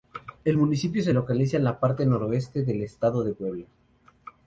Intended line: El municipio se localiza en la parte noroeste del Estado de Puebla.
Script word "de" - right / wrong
right